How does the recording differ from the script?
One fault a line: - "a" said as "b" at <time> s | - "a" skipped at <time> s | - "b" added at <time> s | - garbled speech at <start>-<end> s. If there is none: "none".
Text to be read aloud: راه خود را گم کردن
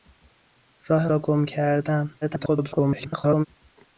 - "خود" skipped at 1.1 s
- garbled speech at 2.2-3.5 s